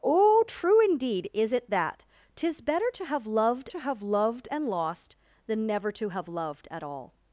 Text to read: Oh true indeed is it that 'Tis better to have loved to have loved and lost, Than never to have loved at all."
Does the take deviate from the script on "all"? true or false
false